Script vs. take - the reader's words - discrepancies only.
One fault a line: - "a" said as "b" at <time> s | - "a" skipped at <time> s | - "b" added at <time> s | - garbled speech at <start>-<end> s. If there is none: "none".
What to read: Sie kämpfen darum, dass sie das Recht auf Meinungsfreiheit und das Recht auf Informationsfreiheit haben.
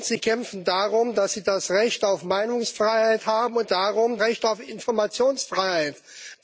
- "das" said as "darum" at 3.7 s